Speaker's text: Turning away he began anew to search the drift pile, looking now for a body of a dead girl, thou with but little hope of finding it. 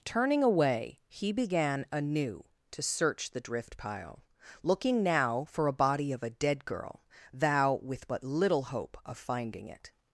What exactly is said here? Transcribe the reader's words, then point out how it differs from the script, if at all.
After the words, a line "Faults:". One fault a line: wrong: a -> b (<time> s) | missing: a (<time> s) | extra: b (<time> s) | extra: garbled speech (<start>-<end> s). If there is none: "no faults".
Turning away he began anew to search the drift pile, looking now for a body of a dead girl, thou with but little hope of finding it.
Faults:
no faults